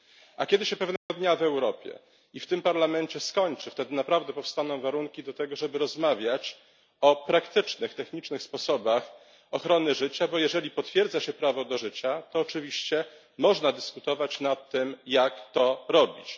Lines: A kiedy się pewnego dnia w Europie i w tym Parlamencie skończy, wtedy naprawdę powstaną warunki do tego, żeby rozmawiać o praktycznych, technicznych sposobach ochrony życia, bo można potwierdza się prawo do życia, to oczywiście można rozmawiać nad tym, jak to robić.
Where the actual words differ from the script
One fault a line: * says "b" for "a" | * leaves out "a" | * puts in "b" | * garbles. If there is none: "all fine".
* says "jeżeli" for "można"
* says "dyskutować" for "rozmawiać"